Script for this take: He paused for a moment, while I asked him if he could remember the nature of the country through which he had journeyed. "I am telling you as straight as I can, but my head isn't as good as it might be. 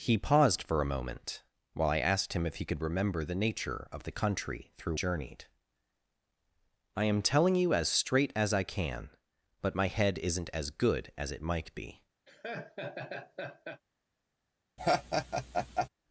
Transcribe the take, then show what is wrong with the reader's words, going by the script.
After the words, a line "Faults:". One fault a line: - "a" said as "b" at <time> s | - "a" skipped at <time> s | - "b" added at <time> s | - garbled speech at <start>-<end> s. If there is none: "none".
He paused for a moment, while I asked him if he could remember the nature of the country through journeyed. "I am telling you as straight as I can, but my head isn't as good as it might be.
Faults:
- "which he had" skipped at 5.0 s